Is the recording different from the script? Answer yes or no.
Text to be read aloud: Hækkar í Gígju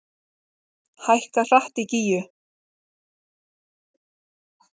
yes